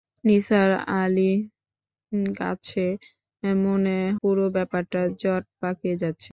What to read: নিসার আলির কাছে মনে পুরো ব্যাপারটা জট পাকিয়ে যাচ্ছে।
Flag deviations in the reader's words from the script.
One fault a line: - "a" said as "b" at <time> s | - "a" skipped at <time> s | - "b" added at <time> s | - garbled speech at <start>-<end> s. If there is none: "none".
none